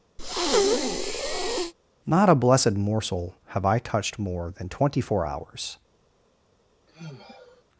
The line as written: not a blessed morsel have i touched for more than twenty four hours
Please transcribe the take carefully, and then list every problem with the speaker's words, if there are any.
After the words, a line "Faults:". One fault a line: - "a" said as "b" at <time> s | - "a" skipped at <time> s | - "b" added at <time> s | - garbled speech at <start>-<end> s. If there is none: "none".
not a blessed morsel have i touched more than twenty four hours
Faults:
- "for" skipped at 4.2 s